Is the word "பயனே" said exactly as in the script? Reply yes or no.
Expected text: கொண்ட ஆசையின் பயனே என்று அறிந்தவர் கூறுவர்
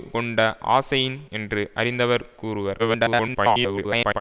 no